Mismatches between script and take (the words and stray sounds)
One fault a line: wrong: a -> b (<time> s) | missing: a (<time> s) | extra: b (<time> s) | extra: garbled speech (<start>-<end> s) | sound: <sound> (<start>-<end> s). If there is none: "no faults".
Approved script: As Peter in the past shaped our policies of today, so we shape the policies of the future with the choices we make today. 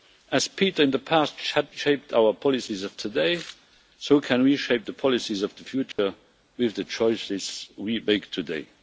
extra: can (4.2 s)
sound: dropout (5.9-6.0 s)